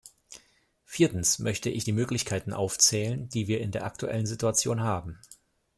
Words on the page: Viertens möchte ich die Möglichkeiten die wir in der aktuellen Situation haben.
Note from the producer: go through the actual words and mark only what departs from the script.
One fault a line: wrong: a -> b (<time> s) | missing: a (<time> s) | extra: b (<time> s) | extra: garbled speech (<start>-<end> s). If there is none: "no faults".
extra: aufzählen (2.5 s)